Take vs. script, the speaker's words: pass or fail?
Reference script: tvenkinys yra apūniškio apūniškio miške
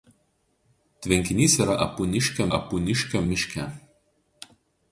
pass